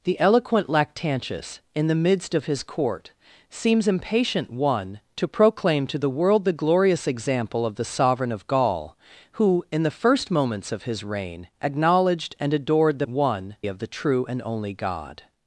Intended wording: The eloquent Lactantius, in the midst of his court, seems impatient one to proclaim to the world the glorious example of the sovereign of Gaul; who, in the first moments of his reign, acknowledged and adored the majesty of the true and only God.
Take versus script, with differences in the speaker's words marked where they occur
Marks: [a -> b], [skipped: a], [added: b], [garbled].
The eloquent Lactantius, in the midst of his court, seems impatient one to proclaim to the world the glorious example of the sovereign of Gaul; who, in the first moments of his reign, acknowledged and adored the [majesty -> one] of the true and only God.